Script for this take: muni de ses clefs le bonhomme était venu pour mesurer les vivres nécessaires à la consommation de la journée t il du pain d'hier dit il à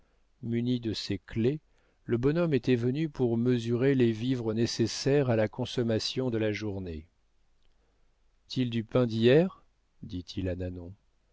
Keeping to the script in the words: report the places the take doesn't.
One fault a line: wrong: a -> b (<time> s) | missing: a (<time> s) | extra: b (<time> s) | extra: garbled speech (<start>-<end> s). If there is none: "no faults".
no faults